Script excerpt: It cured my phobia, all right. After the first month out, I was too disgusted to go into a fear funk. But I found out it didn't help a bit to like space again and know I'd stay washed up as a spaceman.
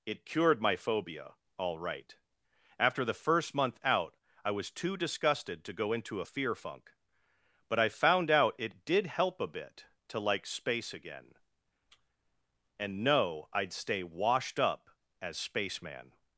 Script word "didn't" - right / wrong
wrong